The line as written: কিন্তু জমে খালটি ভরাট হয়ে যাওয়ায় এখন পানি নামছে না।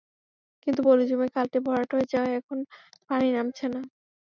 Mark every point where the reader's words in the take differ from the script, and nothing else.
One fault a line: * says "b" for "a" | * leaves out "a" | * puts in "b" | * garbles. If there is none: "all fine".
* puts in "পলি"